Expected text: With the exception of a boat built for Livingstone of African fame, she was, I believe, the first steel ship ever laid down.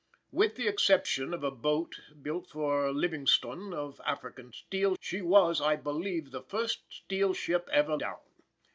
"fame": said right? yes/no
no